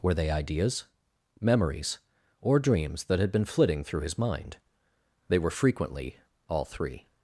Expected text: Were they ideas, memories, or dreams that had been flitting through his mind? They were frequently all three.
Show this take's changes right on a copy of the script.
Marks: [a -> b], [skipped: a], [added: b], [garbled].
Were they ideas, memories, or dreams that had been flitting through his mind? They were frequently all three.